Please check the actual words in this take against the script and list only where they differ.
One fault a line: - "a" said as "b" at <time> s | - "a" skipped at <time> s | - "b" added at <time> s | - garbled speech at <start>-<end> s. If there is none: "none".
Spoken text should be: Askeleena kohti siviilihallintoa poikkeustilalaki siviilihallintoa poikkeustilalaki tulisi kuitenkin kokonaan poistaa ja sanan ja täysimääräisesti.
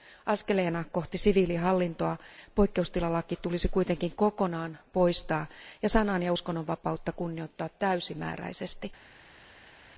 - "siviilihallintoa poikkeustilalaki" skipped at 3.4 s
- "uskonnonvapautta kunnioittaa" added at 6.3 s